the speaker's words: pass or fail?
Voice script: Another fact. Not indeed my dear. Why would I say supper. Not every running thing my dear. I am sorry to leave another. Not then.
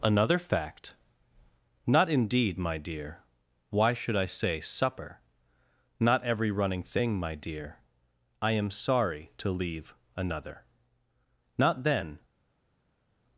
fail